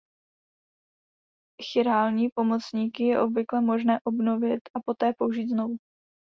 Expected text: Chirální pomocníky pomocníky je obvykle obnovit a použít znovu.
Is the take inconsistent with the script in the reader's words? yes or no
yes